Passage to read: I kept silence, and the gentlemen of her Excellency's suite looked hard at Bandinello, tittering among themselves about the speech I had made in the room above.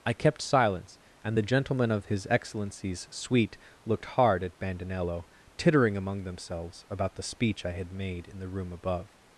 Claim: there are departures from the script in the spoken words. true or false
true